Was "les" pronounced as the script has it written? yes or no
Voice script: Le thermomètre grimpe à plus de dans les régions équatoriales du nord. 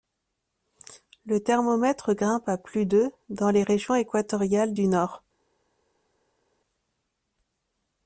yes